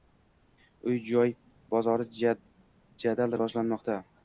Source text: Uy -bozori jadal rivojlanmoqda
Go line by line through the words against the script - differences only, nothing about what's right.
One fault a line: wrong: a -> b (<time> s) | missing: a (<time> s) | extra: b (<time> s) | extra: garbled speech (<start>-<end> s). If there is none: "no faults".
extra: joy (1.1 s)